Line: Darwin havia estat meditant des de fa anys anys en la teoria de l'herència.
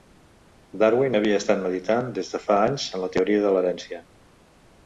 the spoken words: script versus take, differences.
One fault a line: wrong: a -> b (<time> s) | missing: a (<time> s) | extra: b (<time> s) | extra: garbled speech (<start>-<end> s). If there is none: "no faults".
missing: anys (2.9 s)